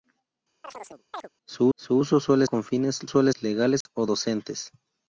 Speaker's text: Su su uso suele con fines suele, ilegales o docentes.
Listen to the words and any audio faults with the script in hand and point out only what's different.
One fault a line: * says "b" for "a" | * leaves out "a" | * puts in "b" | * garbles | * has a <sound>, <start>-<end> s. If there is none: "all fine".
* has a chirp, 0.6-1.3 s
* has a dropout, 3.8-3.9 s